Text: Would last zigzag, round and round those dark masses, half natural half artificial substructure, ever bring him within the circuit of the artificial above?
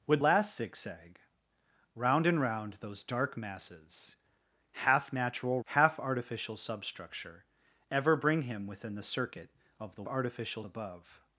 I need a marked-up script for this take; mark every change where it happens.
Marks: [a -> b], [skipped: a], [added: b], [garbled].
Would last zigzag, round and round those dark masses, half natural half artificial substructure, ever bring him within the circuit of the artificial above?